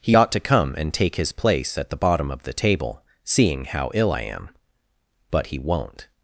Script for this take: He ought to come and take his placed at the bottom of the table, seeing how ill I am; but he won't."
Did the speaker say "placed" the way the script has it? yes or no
no